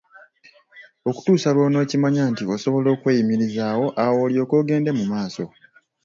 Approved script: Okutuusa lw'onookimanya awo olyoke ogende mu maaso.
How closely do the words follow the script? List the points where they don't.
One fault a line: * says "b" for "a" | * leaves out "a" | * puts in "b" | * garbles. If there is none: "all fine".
* puts in "nti osobola okweyimirizaawo"